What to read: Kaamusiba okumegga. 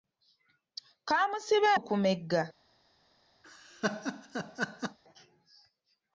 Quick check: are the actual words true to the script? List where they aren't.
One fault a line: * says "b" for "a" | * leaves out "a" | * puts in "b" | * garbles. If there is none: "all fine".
all fine